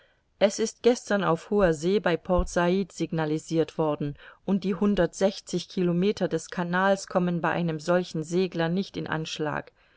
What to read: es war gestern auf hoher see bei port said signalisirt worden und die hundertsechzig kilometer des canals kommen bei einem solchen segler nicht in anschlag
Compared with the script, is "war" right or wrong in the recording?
wrong